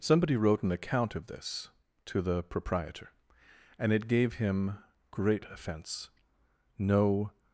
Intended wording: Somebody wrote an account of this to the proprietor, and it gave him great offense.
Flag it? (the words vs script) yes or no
yes